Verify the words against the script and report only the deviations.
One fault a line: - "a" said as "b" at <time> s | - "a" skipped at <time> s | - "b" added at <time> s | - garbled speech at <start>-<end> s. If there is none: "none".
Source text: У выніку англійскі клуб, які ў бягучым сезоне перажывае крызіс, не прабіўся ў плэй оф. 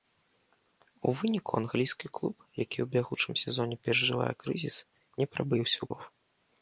- "плэй" skipped at 5.9 s